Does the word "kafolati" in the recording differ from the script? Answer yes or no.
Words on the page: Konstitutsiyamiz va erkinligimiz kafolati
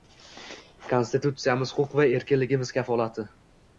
no